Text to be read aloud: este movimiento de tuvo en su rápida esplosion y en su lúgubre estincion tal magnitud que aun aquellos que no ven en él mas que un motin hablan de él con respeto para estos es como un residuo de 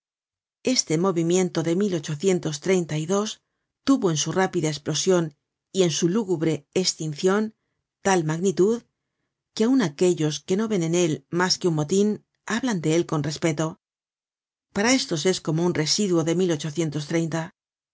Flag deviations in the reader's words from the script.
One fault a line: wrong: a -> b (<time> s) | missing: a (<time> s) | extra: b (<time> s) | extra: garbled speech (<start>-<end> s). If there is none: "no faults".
no faults